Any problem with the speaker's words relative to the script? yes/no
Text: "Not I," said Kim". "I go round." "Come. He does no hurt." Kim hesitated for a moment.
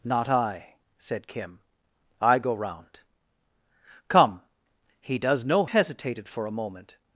yes